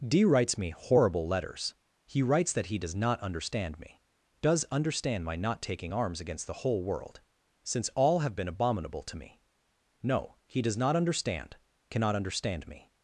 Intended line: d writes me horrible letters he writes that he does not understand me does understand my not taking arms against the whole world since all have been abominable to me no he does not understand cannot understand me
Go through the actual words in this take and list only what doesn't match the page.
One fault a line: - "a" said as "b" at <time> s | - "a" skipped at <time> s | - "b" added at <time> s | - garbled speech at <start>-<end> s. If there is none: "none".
none